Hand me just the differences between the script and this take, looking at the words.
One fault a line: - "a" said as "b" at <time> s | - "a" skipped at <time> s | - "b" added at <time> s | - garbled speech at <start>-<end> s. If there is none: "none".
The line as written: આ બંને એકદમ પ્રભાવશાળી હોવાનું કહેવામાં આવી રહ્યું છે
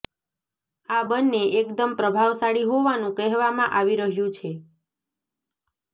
none